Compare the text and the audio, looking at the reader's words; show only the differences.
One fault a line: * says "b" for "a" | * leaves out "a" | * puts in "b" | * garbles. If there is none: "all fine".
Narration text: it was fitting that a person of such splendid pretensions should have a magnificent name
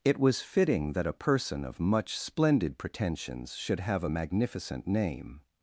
* says "much" for "such"